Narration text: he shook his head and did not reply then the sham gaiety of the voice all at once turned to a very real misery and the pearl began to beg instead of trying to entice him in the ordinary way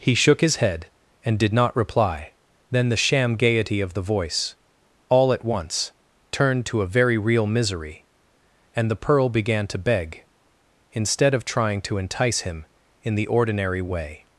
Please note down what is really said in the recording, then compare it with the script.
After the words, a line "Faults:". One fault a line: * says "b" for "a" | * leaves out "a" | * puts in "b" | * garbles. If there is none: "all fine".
he shook his head and did not reply then the sham gaiety of the voice all at once turned to a very real misery and the pearl began to beg instead of trying to entice him in the ordinary way
Faults:
all fine